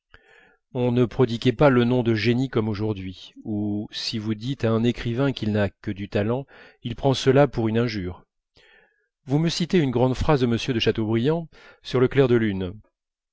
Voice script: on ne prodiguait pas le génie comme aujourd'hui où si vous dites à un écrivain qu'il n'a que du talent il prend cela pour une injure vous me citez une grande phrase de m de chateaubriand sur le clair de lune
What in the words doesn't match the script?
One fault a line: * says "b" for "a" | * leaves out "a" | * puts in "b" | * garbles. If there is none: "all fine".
* puts in "nom de"